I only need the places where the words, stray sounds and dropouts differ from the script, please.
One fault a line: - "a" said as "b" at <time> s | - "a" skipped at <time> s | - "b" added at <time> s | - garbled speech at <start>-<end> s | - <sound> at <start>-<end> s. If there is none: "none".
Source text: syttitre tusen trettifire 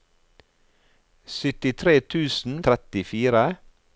none